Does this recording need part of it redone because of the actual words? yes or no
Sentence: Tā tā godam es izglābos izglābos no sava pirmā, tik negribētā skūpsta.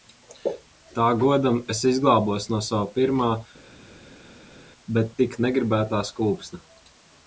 yes